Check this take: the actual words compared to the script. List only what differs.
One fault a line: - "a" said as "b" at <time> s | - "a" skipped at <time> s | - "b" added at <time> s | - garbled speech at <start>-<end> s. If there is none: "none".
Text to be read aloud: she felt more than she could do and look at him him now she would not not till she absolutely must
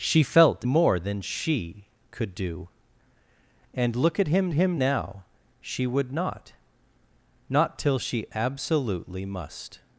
none